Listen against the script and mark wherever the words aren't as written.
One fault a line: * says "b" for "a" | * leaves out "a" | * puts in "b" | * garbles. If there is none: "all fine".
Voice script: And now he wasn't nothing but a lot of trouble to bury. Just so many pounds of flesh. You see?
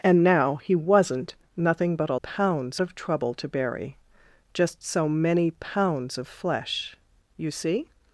* says "pounds" for "lot"